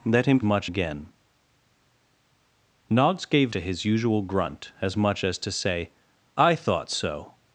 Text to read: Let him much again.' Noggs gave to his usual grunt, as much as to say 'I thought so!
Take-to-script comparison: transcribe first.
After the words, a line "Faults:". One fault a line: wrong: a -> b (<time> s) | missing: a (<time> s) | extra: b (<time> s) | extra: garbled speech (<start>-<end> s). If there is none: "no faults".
Let him much again.' Noggs gave to his usual grunt, as much as to say 'I thought so!
Faults:
no faults